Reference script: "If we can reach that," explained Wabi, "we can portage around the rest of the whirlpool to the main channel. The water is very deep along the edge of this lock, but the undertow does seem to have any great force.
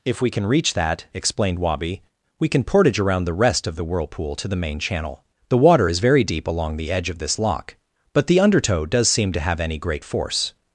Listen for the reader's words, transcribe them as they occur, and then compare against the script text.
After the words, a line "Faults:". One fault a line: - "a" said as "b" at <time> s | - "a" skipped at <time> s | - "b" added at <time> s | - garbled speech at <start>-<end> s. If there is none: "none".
"If we can reach that," explained Wabi, "we can portage around the rest of the whirlpool to the main channel. The water is very deep along the edge of this lock, but the undertow does seem to have any great force.
Faults:
none